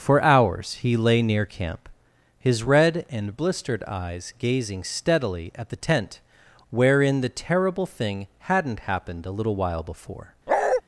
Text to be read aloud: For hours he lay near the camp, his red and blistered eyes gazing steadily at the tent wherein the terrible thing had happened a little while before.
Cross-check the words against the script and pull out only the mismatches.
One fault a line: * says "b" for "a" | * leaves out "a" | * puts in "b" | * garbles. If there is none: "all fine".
* leaves out "the"
* says "hadn't" for "had"